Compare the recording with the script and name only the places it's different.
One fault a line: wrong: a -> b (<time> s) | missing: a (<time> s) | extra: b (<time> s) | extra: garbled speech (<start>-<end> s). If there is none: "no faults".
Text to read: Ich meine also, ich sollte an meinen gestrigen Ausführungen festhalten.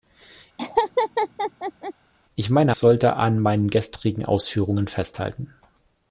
missing: also ich (2.7 s)